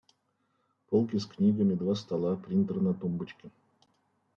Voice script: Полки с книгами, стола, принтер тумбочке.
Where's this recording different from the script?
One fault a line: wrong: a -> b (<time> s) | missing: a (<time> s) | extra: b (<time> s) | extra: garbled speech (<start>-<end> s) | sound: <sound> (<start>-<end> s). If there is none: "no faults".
extra: два (1.8 s)
extra: на (2.8 s)